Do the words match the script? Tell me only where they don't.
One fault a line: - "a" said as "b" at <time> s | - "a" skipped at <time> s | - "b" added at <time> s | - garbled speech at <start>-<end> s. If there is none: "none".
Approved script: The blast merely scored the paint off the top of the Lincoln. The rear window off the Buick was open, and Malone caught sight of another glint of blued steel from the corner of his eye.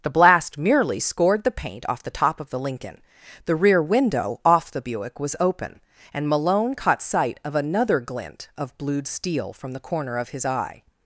none